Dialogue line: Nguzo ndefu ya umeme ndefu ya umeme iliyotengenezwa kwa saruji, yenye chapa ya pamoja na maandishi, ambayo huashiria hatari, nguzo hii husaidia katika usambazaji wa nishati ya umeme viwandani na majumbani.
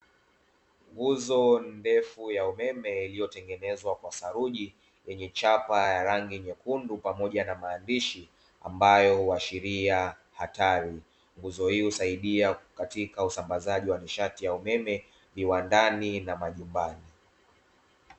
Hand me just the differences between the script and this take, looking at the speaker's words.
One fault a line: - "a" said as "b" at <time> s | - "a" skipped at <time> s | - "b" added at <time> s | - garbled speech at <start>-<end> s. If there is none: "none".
- "ndefu ya umeme" skipped at 3.0 s
- "rangi nyekundu" added at 6.0 s